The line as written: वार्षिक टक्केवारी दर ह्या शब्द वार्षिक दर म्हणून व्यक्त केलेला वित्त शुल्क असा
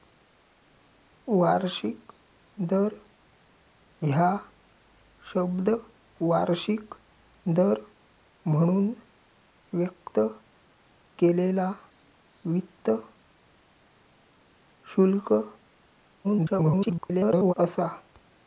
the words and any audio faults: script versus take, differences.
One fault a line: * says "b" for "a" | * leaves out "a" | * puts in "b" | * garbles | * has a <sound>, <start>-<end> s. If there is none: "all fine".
* leaves out "टक्केवारी"
* garbles